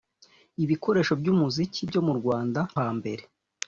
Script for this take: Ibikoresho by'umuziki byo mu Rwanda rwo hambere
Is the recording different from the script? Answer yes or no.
yes